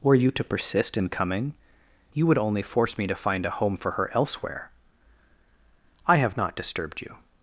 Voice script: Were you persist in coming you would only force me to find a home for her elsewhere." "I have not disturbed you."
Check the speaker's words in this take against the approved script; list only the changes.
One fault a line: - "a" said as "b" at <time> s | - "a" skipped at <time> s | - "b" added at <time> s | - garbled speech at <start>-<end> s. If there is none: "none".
- "to" added at 0.3 s